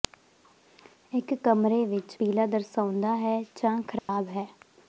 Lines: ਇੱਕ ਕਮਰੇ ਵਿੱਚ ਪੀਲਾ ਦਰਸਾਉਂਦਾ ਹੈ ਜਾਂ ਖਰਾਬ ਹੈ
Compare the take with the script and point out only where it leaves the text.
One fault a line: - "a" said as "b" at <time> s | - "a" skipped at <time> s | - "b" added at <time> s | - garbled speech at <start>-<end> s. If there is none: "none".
none